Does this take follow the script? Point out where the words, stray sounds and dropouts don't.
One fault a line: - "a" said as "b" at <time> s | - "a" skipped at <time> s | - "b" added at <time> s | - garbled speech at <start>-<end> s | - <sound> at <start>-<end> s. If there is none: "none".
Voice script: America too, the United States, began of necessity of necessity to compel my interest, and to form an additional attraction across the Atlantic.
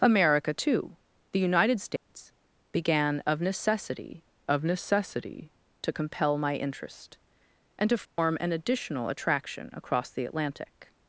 - dropout at 2.0-2.1 s
- dropout at 8.1-8.2 s